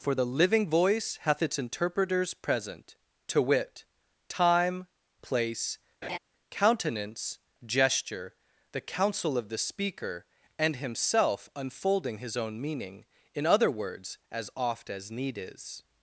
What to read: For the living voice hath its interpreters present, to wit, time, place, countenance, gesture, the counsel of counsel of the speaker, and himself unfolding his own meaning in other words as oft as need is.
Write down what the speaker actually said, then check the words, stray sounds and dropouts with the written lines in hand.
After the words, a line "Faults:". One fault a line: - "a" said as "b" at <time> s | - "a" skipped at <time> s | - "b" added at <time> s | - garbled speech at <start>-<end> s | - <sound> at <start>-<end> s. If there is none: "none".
For the living voice hath its interpreters present, to wit, time, place, countenance, gesture, the counsel of the speaker, and himself unfolding his own meaning in other words as oft as need is.
Faults:
- laugh at 6.0-6.2 s
- "counsel of" skipped at 9.5 s